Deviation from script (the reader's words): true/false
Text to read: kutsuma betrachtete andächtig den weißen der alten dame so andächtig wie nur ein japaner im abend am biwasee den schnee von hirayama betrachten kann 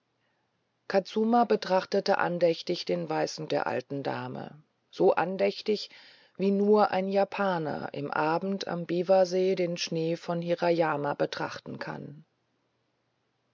false